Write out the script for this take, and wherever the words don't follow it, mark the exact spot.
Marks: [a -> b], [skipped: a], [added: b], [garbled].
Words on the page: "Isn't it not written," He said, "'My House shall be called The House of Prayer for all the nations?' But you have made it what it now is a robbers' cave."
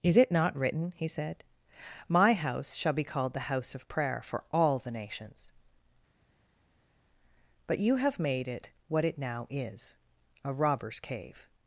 ["Isn't -> Is] it not written," He said, "'My House shall be called The House of Prayer for all the nations?' But you have made it what it now is a robbers' cave."